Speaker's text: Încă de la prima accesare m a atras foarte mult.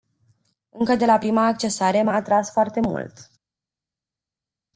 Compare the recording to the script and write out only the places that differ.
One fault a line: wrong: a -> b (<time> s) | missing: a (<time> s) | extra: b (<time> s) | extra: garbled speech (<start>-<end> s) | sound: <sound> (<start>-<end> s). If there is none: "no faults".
no faults